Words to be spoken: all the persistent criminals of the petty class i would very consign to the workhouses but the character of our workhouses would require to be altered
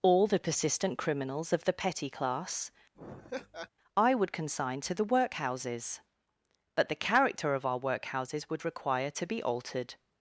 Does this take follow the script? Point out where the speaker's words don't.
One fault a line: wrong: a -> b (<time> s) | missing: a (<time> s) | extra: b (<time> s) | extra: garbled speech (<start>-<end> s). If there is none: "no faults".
missing: very (4.3 s)